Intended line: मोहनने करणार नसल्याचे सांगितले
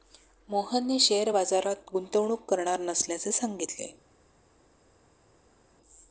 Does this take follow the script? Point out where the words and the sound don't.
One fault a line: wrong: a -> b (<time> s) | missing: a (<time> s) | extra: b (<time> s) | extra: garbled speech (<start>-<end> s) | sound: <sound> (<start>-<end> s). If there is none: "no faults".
extra: शेअर बाजारात गुंतवणूक (1.0 s)